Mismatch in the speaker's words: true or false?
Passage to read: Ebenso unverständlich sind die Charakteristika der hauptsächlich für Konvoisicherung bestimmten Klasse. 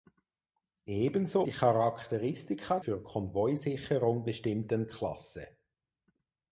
true